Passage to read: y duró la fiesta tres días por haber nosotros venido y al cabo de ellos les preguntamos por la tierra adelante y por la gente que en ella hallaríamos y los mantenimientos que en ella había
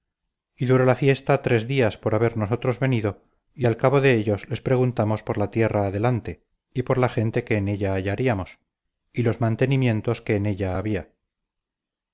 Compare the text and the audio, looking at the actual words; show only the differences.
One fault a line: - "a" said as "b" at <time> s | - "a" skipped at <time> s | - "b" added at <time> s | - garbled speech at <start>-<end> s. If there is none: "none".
none